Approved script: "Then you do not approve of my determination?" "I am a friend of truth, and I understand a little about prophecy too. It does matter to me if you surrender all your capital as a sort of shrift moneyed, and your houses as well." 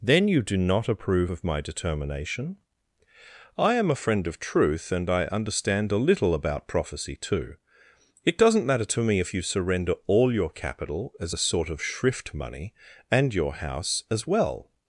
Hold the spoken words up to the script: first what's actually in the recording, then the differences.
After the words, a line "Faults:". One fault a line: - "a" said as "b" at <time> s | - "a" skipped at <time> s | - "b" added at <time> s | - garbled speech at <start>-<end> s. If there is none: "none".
"Then you do not approve of my determination?" "I am a friend of truth, and I understand a little about prophecy too. It doesn't matter to me if you surrender all your capital as a sort of shrift money, and your house as well."
Faults:
- "does" said as "doesn't" at 8.4 s
- "moneyed" said as "money" at 12.3 s
- "houses" said as "house" at 13.5 s